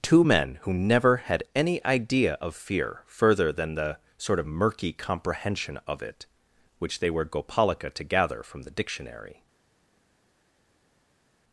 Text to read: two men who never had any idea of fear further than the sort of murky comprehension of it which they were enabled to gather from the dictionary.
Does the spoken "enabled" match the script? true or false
false